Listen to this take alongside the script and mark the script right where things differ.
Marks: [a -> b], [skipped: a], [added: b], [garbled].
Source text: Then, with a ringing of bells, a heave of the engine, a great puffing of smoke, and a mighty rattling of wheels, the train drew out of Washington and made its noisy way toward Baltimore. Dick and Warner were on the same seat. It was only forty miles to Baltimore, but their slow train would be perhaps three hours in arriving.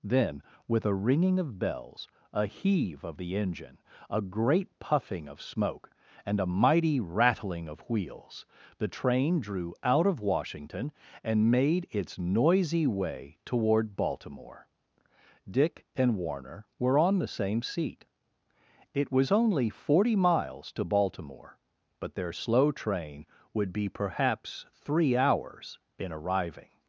Then, with a ringing of bells, a heave of the engine, a great puffing of smoke, and a mighty rattling of wheels, the train drew out of Washington and made its noisy way toward Baltimore. Dick and Warner were on the same seat. It was only forty miles to Baltimore, but their slow train would be perhaps three hours in arriving.